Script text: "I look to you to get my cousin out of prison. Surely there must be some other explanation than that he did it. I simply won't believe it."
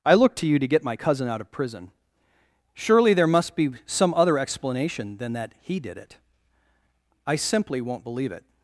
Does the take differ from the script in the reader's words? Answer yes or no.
no